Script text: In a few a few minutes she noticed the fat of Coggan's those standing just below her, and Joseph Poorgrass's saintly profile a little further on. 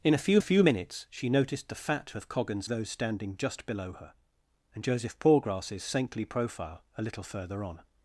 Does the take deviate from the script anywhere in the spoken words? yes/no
no